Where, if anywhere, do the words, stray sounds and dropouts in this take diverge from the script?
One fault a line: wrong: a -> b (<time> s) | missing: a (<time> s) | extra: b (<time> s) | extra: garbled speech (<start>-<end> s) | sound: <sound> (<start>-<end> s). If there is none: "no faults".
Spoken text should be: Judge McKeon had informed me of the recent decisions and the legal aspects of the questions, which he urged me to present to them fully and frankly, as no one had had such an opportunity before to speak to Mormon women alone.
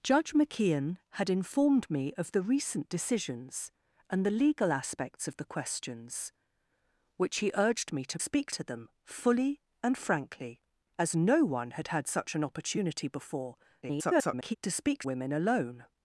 wrong: present -> speak (8.2 s)
extra: garbled speech (13.8-14.6 s)
missing: to Mormon (15.0 s)